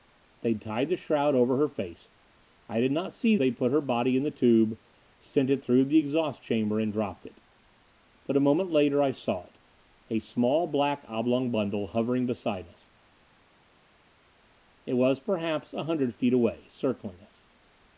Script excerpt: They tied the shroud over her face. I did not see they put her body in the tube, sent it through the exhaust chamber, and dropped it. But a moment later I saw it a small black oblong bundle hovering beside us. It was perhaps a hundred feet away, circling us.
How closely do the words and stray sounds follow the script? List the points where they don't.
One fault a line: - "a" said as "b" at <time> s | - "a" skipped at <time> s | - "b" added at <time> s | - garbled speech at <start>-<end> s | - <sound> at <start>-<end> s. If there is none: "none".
none